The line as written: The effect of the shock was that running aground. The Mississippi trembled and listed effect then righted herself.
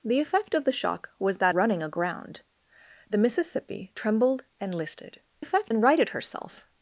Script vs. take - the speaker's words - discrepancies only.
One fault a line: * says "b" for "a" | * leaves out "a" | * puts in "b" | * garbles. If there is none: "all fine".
all fine